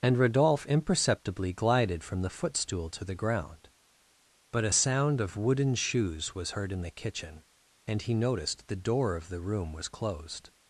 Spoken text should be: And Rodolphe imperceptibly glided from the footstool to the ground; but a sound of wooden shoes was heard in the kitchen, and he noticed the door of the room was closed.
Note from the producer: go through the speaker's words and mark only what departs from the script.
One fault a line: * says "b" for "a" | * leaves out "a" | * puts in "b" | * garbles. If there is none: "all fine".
all fine